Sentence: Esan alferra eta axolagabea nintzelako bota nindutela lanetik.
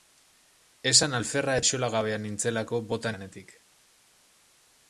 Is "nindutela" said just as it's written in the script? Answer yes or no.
no